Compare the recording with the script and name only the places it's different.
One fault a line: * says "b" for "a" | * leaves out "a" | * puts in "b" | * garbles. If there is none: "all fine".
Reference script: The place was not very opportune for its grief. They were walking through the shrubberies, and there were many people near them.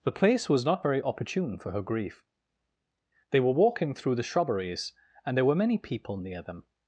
* says "her" for "its"